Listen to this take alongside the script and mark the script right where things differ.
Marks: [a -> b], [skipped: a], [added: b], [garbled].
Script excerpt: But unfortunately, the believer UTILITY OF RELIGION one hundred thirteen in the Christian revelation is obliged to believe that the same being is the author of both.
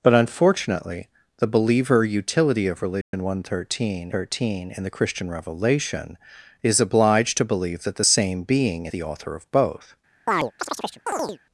But unfortunately, the believer UTILITY OF RELIGION one hundred thirteen [added: thirteen] in the Christian revelation is obliged to believe that the same being [skipped: is] the author of both.